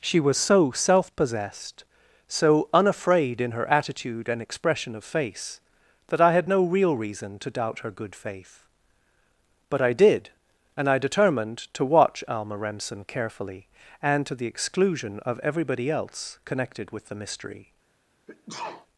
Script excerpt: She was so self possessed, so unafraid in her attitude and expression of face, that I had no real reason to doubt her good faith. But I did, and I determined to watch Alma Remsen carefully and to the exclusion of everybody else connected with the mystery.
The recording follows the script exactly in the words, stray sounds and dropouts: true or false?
false